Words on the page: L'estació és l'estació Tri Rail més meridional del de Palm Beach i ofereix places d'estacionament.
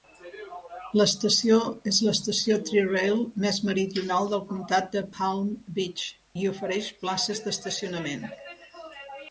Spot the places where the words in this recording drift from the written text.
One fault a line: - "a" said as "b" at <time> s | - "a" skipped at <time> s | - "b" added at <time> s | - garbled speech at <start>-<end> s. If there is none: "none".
- "comtat" added at 4.5 s